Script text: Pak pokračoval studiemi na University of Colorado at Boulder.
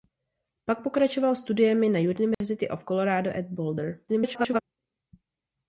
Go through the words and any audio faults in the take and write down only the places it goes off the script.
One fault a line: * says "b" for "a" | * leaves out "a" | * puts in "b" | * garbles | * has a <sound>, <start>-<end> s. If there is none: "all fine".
* has a dropout, 2.3-2.4 s
* garbles